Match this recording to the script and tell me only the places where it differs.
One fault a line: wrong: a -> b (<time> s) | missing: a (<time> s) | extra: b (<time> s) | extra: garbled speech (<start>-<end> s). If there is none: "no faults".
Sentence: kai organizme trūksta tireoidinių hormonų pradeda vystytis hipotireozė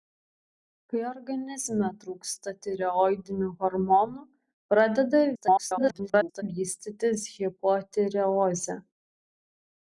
extra: garbled speech (5.3-6.4 s)